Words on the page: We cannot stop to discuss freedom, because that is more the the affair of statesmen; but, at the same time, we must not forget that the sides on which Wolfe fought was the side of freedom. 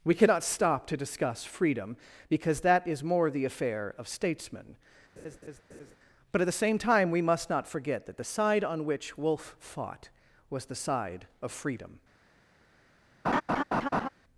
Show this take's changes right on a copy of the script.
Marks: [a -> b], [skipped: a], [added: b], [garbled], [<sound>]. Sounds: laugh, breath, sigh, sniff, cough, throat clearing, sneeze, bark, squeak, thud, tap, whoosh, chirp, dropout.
We cannot stop to discuss freedom, because that is more the [skipped: the] affair of statesmen; [laugh] but, at the same time, we must not forget that the [sides -> side] on which Wolfe fought was the side of freedom. [laugh]